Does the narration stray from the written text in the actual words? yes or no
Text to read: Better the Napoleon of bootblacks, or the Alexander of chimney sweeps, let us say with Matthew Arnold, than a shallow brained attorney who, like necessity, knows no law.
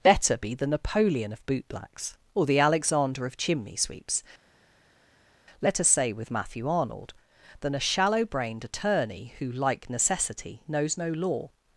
yes